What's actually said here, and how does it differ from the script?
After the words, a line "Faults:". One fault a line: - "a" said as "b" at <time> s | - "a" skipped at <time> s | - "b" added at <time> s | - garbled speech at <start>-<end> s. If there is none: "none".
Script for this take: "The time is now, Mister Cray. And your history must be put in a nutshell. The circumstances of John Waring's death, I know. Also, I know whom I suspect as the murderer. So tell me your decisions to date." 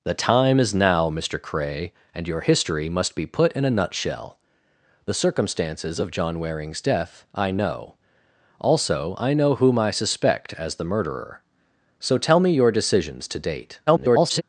"The time is now, Mister Cray. And your history must be put in a nutshell. The circumstances of John Waring's death, I know. Also, I know whom I suspect as the murderer. So tell me your decisions to date." [garbled]
Faults:
- garbled speech at 13.9-14.4 s